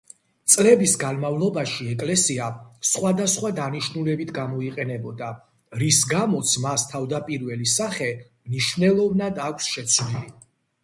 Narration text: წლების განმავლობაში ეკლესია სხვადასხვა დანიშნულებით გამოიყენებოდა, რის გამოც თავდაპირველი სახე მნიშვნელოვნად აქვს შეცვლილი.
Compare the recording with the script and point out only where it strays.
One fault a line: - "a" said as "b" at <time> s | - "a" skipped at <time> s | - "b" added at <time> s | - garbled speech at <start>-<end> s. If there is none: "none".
- "მას" added at 6.6 s